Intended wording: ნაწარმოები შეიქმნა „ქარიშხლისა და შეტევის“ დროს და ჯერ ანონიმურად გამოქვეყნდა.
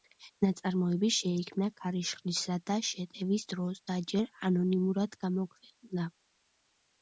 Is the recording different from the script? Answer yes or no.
no